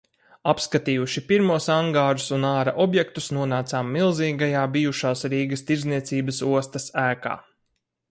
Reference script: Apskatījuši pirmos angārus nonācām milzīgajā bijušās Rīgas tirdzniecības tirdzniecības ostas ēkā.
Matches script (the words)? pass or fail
fail